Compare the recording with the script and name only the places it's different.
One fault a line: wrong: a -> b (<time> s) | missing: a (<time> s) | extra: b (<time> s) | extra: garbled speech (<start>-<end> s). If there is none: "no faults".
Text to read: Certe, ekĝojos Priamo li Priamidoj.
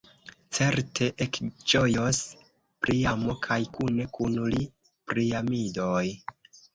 extra: kaj kune kun (3.4 s)